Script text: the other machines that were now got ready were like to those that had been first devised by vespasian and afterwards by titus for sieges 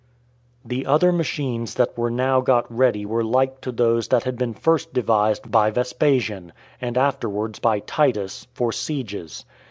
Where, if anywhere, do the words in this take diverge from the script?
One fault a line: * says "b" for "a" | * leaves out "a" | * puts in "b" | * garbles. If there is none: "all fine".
all fine